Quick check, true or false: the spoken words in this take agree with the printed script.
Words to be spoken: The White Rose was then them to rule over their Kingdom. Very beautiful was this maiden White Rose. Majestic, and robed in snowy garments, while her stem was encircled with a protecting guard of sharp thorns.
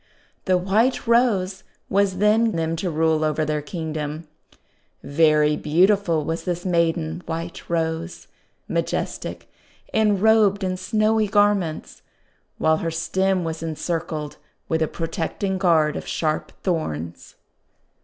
true